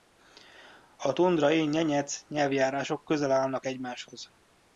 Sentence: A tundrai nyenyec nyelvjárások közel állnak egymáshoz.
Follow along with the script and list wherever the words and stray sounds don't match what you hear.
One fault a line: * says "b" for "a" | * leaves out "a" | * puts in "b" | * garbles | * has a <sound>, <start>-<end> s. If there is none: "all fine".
all fine